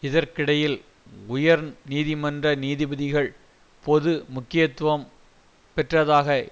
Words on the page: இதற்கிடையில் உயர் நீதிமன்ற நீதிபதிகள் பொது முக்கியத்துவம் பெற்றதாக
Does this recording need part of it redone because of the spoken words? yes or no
no